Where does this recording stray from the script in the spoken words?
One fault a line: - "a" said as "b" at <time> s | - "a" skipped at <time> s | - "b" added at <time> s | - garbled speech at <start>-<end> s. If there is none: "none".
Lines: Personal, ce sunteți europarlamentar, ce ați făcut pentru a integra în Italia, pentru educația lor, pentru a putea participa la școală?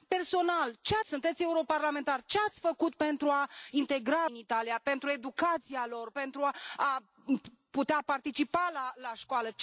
none